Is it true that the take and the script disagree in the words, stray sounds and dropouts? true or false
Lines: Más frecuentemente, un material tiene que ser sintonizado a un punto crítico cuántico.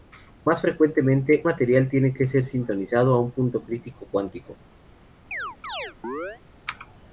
true